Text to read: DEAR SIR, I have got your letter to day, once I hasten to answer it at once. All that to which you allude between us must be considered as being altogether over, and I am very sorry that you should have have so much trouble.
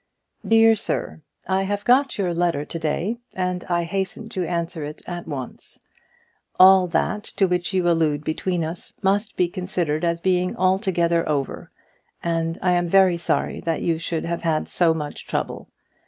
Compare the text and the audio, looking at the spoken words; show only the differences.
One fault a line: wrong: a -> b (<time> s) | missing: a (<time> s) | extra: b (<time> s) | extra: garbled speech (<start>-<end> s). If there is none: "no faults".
wrong: once -> and (3.4 s)
wrong: have -> had (14.4 s)